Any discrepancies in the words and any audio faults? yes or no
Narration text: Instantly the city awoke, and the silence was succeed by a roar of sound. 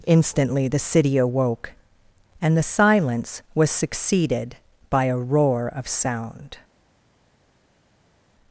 yes